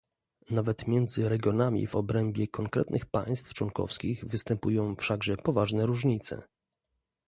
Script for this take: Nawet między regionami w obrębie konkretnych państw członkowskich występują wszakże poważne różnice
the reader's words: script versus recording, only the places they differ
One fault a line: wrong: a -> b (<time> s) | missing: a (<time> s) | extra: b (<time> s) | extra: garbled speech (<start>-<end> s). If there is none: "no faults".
no faults